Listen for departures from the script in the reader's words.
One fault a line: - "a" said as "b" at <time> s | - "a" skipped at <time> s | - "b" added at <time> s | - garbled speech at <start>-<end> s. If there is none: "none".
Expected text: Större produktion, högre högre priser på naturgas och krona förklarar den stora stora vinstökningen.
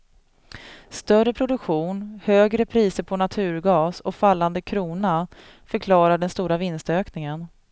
- "högre" skipped at 2.6 s
- "fallande" added at 4.1 s
- "stora" skipped at 6.6 s